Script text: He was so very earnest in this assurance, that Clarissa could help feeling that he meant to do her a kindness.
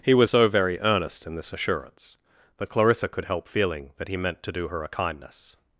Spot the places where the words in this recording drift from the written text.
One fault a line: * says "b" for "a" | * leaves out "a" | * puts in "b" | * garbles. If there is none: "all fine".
all fine